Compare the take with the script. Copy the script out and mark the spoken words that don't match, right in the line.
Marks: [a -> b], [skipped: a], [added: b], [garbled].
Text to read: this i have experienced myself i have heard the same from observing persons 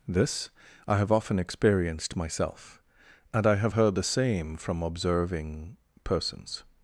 this i have [added: often] experienced myself [added: and] i have heard the same from observing persons